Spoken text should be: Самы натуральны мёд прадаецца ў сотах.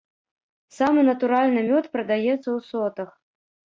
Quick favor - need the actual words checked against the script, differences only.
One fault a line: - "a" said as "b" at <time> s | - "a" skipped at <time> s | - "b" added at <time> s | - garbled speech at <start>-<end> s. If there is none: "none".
none